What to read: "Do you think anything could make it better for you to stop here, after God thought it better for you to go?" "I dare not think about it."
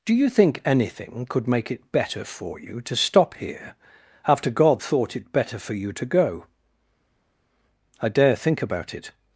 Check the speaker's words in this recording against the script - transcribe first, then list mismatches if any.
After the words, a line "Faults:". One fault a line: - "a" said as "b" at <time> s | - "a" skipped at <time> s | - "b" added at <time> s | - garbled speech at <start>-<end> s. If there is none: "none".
"Do you think anything could make it better for you to stop here, after God thought it better for you to go?" "I dare think about it."
Faults:
- "not" skipped at 8.4 s